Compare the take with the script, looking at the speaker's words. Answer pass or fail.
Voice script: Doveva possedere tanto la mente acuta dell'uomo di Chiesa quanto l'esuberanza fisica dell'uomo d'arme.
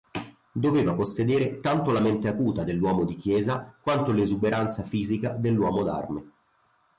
pass